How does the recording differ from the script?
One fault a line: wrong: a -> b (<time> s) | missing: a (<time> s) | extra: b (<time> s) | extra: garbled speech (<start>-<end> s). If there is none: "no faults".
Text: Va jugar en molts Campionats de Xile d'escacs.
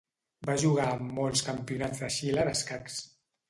no faults